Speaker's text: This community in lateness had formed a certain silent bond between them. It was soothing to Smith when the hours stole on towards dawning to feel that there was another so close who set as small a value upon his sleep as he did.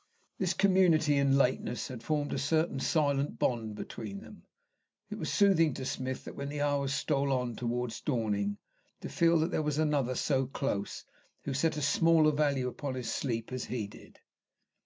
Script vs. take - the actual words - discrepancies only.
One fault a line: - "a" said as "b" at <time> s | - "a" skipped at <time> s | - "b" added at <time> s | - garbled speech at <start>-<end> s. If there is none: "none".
none